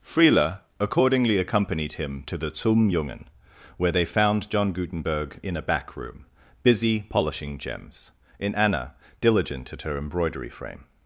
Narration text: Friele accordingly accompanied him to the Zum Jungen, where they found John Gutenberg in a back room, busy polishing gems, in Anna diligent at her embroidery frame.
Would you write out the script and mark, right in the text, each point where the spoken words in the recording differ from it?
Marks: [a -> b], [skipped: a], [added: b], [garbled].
Friele accordingly accompanied him to the Zum Jungen, where they found John Gutenberg in a back room, busy polishing gems, in Anna diligent at her embroidery frame.